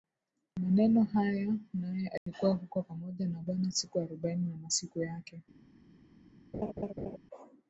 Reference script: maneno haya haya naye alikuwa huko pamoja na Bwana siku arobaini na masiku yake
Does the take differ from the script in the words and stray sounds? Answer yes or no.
yes